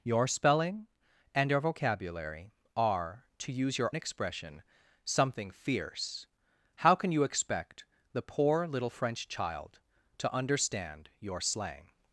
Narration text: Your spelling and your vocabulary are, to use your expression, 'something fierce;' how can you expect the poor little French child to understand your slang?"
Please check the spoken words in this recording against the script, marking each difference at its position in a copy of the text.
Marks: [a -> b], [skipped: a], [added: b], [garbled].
Your spelling and your vocabulary are, to use your expression, 'something fierce;' how can you expect the poor little French child to understand your slang?"